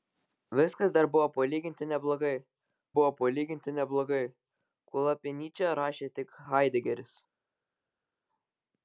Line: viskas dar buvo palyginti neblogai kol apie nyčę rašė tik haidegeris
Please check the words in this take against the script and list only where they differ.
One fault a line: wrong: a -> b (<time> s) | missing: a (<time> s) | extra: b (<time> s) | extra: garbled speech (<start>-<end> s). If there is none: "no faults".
extra: buvo palyginti neblogai (3.0 s)